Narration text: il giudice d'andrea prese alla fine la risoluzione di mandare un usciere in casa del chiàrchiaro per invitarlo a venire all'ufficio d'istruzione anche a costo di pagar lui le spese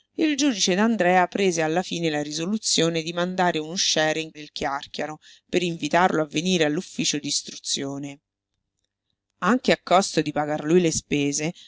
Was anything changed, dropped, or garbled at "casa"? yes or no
yes